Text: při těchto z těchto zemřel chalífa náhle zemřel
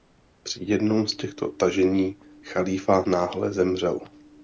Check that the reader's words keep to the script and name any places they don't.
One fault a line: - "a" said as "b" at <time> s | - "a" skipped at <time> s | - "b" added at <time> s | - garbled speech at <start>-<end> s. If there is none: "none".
- "těchto" said as "jednom" at 0.6 s
- "zemřel" said as "tažení" at 1.5 s